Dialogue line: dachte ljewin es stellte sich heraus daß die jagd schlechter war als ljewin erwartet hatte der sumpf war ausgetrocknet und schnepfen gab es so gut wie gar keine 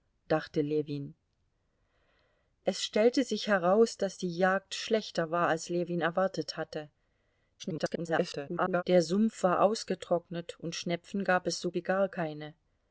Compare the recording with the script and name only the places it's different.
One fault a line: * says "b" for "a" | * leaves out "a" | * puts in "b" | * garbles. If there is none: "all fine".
* garbles
* leaves out "gut"